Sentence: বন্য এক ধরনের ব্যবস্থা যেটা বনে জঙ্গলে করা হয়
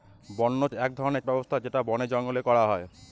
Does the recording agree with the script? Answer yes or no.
yes